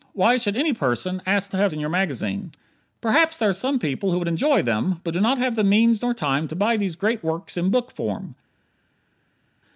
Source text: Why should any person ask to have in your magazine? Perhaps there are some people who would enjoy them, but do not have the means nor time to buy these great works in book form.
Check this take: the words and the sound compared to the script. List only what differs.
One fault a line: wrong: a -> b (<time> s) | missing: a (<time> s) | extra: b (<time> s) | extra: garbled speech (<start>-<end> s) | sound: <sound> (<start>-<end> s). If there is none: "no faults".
no faults